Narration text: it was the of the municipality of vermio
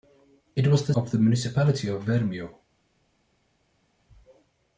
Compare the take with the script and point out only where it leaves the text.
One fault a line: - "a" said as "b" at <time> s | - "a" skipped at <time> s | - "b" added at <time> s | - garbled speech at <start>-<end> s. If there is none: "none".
none